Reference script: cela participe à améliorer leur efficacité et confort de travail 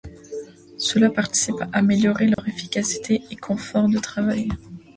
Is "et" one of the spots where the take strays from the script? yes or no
no